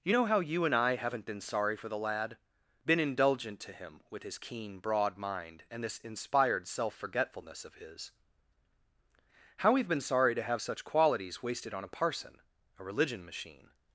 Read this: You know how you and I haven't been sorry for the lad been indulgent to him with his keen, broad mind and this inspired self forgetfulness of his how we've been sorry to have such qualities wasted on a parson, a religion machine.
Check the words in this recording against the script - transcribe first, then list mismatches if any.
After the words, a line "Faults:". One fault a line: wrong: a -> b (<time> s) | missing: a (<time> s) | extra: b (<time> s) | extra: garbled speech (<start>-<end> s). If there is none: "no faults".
You know how you and I haven't been sorry for the lad been indulgent to him with his keen, broad mind and this inspired self forgetfulness of his how we've been sorry to have such qualities wasted on a parson, a religion machine.
Faults:
no faults